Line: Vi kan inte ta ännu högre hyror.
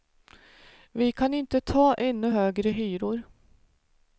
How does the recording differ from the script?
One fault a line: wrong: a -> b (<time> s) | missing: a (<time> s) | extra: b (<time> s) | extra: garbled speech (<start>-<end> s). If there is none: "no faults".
no faults